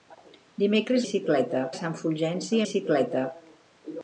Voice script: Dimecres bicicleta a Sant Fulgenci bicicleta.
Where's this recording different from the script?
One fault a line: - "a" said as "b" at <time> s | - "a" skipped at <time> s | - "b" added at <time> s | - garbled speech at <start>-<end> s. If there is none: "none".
none